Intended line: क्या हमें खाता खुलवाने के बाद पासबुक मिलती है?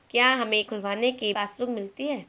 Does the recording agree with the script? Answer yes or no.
no